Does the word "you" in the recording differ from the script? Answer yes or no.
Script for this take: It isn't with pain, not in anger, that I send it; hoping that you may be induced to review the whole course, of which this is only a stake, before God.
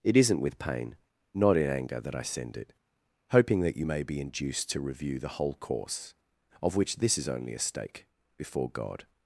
no